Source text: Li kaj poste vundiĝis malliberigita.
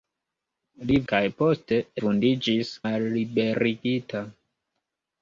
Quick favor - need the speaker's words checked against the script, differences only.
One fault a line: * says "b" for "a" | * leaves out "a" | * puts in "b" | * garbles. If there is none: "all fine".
all fine